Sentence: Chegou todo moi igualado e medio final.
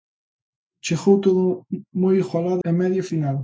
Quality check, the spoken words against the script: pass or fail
pass